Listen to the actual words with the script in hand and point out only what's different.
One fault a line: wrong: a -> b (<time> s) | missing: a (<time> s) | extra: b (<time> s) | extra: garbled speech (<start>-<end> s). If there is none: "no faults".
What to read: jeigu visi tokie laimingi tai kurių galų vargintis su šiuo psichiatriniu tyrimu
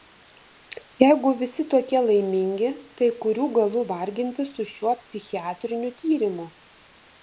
no faults